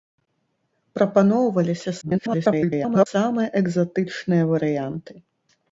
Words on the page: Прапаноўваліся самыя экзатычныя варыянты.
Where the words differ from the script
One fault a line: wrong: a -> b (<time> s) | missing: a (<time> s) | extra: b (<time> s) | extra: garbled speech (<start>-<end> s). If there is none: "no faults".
extra: garbled speech (2.0-3.1 s)